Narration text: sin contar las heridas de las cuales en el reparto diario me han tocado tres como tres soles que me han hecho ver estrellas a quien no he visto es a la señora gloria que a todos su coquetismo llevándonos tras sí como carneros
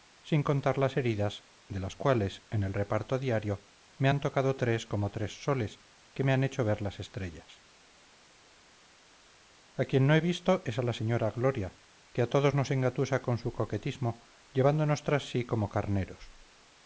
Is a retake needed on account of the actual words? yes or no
yes